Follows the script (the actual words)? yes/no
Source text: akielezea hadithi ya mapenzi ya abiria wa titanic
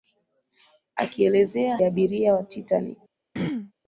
no